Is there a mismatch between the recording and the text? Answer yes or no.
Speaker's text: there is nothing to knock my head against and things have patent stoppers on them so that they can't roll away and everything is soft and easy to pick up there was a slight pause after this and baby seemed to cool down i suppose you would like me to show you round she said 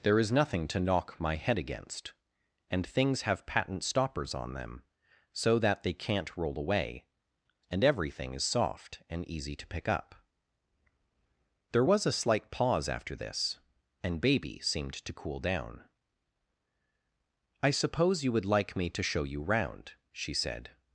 no